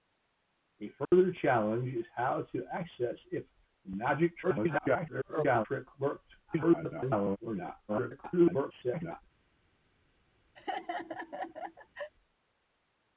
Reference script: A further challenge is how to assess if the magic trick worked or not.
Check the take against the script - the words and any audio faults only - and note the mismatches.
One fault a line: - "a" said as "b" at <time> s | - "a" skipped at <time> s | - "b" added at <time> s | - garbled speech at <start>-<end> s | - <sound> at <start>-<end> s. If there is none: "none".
- dropout at 1.0-1.1 s
- garbled speech at 4.4-5.7 s
- garbled speech at 6.5-7.4 s
- garbled speech at 7.9-9.2 s
- laugh at 10.6-12.1 s